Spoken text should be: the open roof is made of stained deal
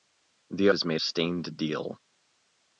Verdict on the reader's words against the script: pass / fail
fail